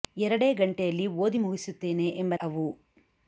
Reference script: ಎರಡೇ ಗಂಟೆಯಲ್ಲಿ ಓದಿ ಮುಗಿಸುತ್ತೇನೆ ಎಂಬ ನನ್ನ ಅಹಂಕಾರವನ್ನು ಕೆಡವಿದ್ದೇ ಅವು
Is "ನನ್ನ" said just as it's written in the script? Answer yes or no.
no